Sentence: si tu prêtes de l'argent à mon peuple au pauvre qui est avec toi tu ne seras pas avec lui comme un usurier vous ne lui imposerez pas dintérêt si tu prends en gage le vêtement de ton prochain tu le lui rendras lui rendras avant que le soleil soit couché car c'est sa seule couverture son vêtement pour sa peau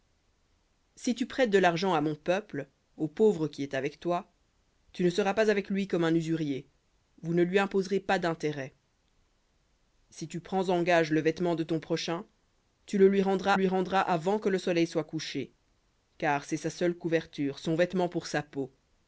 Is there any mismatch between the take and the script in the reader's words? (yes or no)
no